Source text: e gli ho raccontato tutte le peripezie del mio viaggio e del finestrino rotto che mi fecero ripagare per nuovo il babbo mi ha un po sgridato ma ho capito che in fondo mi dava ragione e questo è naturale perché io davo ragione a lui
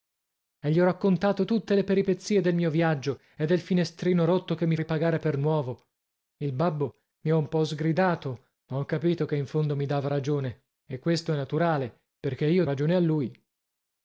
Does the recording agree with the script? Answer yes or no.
no